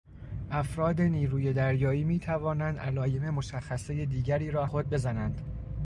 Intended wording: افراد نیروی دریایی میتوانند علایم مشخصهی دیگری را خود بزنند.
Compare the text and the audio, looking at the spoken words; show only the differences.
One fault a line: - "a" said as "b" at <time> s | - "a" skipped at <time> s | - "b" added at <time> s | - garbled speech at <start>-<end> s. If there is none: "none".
none